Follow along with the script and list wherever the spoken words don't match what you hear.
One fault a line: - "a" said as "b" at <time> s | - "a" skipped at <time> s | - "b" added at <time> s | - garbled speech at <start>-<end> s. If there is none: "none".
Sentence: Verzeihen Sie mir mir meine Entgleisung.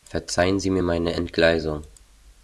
- "mir" skipped at 0.8 s